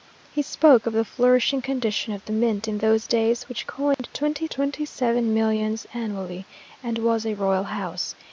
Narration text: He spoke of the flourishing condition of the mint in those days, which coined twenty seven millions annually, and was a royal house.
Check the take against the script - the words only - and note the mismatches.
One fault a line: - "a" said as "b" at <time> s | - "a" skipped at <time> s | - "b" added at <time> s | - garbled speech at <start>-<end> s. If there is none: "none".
- "twenty" added at 4.5 s